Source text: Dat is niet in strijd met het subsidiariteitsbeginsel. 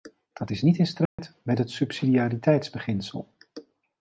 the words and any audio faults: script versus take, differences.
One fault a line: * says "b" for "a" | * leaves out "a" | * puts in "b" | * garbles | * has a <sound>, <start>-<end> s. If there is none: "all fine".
* has a dropout, 1.1-1.2 s